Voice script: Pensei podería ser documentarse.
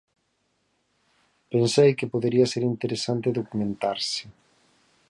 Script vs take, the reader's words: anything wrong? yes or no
yes